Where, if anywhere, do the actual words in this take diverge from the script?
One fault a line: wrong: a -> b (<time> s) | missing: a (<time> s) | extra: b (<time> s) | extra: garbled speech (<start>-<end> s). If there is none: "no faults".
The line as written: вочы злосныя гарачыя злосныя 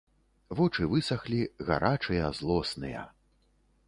wrong: злосныя -> высахлі (0.9 s)